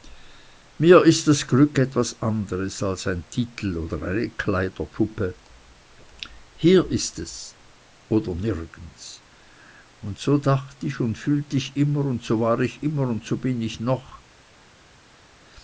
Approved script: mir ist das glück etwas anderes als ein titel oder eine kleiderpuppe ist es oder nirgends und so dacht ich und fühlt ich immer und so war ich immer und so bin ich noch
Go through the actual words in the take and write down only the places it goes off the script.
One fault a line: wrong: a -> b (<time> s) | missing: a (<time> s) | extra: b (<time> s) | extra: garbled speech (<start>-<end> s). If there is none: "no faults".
extra: hier (6.5 s)